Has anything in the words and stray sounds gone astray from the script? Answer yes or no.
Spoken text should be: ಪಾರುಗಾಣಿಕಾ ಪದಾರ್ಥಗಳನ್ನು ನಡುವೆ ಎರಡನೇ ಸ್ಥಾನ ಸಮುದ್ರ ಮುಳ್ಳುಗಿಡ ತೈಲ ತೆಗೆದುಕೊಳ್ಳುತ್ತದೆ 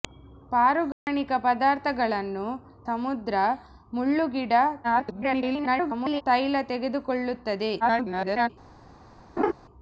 yes